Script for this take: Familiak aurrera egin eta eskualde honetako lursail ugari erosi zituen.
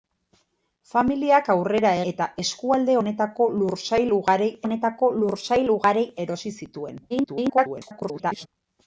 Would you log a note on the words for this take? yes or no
yes